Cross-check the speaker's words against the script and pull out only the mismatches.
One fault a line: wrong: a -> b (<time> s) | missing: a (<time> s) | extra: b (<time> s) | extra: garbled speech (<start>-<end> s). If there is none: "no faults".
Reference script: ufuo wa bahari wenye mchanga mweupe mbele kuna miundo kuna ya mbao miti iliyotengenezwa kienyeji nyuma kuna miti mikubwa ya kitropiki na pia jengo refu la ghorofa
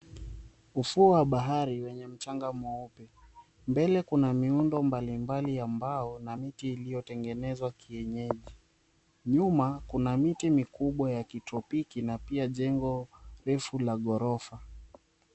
wrong: kuna -> mbalimbali (4.8 s)
extra: na (6.2 s)